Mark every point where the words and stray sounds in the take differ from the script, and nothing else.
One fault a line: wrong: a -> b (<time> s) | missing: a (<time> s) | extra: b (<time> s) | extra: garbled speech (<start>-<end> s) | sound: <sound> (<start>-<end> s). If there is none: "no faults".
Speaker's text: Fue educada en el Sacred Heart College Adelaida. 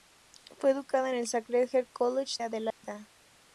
sound: dropout (2.7-2.8 s)